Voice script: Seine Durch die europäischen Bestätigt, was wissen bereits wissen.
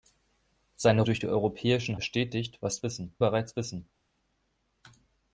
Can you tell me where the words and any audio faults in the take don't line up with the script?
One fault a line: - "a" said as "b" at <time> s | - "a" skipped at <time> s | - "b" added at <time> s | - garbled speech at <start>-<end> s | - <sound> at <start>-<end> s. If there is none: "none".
none